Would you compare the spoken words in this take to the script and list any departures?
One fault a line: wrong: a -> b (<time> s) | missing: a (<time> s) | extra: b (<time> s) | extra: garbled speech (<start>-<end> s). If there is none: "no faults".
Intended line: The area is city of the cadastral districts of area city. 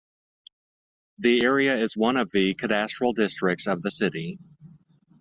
wrong: city -> one (1.9 s)
wrong: area -> the (3.8 s)